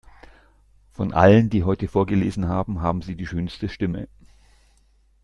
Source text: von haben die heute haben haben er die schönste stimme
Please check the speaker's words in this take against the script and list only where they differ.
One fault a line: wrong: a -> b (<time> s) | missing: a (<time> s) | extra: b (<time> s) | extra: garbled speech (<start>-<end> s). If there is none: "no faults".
wrong: haben -> allen (1.1 s)
extra: vorgelesen (1.9 s)
wrong: er -> sie (3.0 s)